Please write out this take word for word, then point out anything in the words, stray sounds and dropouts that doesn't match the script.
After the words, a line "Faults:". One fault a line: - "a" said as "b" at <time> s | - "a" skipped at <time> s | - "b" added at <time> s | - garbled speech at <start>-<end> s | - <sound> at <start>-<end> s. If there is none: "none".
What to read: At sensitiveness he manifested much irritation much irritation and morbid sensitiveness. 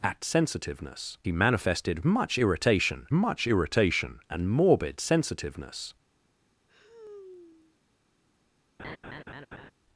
At sensitiveness he manifested much irritation much irritation and morbid sensitiveness.
Faults:
- sigh at 6.7-7.8 s
- laugh at 8.8-9.7 s